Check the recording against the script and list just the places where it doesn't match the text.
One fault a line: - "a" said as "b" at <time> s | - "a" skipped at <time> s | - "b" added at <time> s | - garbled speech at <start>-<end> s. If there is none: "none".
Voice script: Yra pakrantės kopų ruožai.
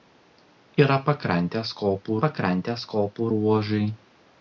- "pakrantės kopų" added at 2.2 s